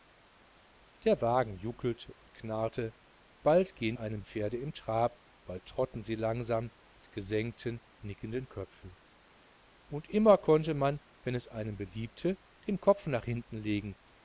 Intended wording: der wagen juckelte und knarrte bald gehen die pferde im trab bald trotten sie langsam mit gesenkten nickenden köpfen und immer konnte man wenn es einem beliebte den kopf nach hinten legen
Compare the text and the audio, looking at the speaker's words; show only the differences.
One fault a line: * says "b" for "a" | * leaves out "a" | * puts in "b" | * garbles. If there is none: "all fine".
* says "einem" for "die"